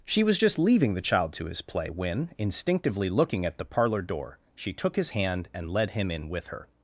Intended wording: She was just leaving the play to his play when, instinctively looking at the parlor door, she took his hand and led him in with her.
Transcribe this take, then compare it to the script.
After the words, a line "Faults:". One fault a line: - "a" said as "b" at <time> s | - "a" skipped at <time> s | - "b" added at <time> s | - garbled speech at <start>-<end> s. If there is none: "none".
She was just leaving the child to his play when, instinctively looking at the parlor door, she took his hand and led him in with her.
Faults:
- "play" said as "child" at 1.0 s